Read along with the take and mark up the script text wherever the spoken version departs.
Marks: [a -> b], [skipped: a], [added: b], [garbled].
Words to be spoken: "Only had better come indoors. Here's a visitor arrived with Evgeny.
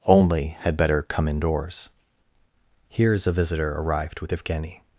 "Only had better come indoors. Here's a visitor arrived with Evgeny.